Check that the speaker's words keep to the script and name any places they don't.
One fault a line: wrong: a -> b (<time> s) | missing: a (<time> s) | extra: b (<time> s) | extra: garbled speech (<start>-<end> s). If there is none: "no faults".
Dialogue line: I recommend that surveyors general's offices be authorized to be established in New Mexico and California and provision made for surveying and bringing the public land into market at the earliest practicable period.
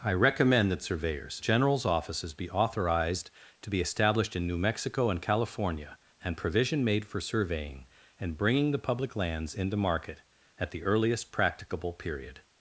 wrong: land -> lands (9.2 s)